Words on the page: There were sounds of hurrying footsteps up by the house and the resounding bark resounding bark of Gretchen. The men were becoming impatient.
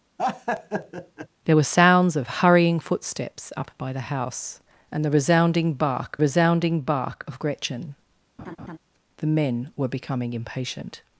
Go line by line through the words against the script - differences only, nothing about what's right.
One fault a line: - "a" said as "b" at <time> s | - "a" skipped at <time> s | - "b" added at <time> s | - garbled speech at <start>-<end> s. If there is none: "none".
none